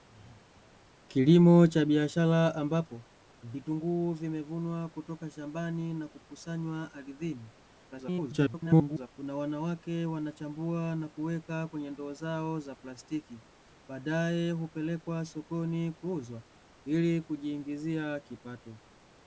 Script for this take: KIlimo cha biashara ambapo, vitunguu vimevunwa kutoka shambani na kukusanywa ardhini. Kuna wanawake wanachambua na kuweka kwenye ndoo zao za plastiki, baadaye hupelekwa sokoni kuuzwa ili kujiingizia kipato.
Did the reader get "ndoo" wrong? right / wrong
right